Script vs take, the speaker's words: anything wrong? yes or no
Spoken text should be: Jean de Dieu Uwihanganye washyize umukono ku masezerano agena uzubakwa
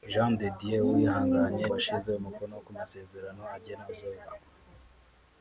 no